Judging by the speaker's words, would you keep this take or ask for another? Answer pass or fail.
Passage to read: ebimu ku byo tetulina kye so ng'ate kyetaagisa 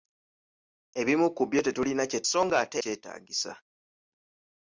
pass